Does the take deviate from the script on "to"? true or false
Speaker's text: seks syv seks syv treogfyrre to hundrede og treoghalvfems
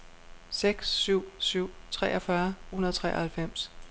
true